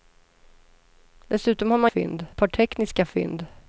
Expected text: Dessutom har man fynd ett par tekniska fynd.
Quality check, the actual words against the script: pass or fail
pass